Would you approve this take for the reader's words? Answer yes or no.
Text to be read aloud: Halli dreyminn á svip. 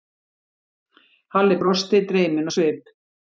no